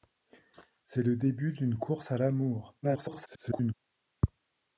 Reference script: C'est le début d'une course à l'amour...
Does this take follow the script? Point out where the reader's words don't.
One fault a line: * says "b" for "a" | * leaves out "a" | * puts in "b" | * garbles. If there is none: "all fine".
* garbles